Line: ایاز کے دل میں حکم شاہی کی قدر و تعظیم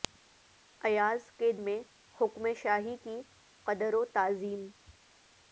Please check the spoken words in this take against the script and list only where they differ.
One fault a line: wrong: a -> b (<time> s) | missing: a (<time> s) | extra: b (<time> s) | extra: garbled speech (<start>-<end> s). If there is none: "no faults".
missing: دل (1.5 s)